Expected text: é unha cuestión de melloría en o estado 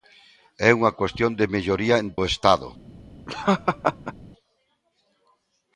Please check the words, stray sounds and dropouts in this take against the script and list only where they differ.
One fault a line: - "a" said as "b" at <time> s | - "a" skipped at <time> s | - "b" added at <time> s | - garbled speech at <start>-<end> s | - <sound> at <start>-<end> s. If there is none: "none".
- laugh at 3.3-4.1 s